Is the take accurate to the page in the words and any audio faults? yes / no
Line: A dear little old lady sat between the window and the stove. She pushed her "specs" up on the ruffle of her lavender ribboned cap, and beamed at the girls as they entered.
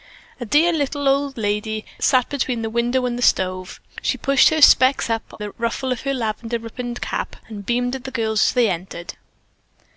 no